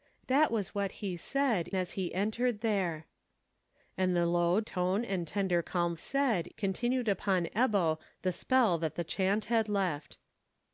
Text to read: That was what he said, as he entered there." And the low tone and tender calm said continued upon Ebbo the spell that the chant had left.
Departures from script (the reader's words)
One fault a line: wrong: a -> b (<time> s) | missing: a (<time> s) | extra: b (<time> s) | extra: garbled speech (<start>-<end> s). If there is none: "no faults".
no faults